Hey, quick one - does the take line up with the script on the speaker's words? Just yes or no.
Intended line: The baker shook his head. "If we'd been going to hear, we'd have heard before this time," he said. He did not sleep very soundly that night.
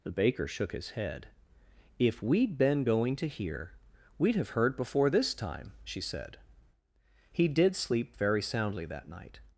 no